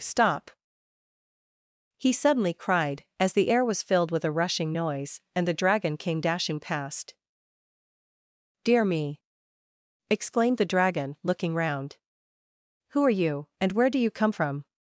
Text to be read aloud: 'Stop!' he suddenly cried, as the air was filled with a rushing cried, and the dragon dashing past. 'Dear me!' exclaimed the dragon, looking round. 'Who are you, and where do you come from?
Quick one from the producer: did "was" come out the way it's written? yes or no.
yes